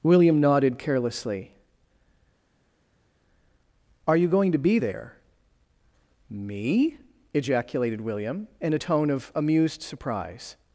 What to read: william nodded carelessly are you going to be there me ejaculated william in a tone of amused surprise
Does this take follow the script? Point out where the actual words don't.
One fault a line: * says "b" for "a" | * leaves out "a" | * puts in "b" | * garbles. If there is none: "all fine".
all fine